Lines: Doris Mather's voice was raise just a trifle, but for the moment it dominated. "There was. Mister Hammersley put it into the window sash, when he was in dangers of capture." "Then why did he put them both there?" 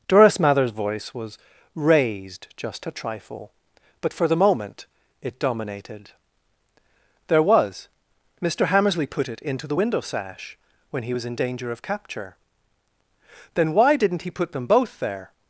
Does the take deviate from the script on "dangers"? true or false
true